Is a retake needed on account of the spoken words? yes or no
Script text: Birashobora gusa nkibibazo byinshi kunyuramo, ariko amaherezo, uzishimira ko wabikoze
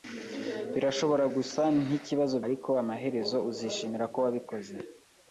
yes